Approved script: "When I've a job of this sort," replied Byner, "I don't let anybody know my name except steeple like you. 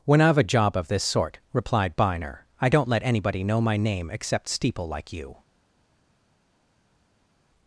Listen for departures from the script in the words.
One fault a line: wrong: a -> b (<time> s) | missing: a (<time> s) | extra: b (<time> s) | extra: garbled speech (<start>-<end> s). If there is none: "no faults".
no faults